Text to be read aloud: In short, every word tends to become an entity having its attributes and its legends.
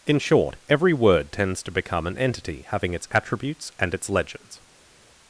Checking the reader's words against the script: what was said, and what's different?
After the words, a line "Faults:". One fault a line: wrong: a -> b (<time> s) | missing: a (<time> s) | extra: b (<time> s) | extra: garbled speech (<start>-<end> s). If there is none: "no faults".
In short, every word tends to become an entity having its attributes and its legends.
Faults:
no faults